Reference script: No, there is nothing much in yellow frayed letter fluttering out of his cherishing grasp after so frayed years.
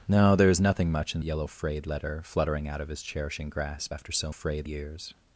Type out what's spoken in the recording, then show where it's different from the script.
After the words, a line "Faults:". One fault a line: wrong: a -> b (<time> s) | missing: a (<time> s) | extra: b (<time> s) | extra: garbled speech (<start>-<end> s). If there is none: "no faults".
No, there is nothing much in yellow frayed letter fluttering out of his cherishing grasp after so frayed years.
Faults:
no faults